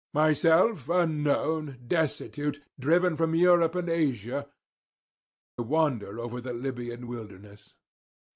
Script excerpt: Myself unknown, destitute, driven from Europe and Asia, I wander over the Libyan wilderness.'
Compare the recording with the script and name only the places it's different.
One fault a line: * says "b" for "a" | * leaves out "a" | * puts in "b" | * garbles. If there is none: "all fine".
* leaves out "I"